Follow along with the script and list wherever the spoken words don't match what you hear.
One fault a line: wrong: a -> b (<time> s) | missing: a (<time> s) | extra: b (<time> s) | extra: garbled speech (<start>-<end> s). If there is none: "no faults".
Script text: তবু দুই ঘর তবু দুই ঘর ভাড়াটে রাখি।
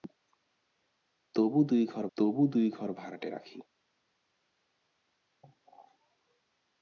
no faults